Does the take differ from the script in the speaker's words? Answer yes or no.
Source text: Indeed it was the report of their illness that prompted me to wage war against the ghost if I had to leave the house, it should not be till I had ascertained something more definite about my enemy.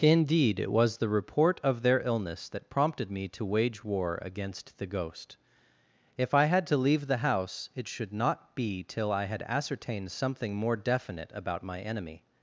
no